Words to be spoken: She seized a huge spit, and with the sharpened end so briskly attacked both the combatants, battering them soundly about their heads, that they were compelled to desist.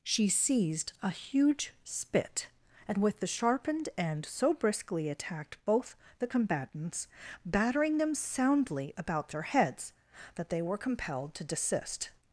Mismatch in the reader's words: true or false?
false